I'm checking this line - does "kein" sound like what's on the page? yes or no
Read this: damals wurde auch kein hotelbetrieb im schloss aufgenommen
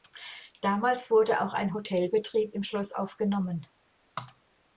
no